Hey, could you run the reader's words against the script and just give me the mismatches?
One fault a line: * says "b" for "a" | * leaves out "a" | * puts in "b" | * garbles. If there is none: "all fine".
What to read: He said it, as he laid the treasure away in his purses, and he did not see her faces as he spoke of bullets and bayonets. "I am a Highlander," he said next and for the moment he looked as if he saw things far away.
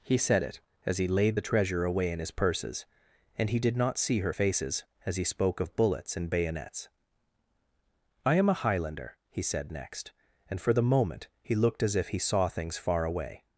all fine